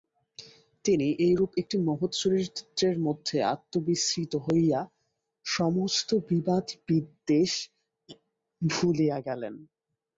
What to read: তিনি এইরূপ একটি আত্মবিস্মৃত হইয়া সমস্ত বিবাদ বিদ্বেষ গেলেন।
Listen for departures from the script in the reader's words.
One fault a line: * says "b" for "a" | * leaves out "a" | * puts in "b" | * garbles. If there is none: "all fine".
* puts in "মহৎ চরিত্রের মধ্যে"
* puts in "ভুলিয়া"